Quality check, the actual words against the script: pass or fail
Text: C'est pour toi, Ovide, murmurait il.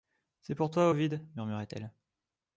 fail